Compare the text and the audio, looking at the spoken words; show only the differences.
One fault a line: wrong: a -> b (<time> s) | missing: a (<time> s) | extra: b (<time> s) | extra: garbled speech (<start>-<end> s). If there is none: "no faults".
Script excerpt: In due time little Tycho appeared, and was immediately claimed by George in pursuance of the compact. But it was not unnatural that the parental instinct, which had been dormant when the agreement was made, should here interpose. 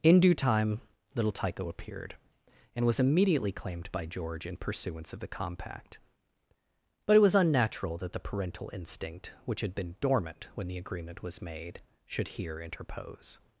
missing: not (7.3 s)